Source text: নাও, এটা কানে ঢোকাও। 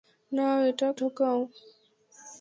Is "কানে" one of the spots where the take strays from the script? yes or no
yes